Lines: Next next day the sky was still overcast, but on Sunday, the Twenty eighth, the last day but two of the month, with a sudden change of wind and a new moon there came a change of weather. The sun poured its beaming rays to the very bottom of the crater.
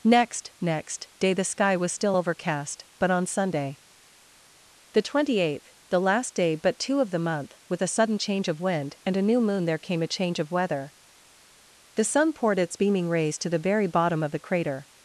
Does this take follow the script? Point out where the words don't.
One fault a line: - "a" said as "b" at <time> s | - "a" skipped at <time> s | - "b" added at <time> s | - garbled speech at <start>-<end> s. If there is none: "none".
none